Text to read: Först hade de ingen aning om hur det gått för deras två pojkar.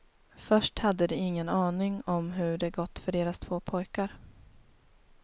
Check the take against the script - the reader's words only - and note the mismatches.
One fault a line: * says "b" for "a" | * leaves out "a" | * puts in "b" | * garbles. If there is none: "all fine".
all fine